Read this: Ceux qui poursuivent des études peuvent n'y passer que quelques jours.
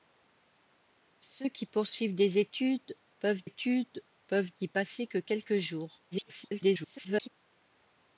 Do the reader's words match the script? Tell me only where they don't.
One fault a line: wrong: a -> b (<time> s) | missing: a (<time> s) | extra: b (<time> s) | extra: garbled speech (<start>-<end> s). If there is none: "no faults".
extra: études peuvent (3.4 s)
extra: garbled speech (6.1-7.3 s)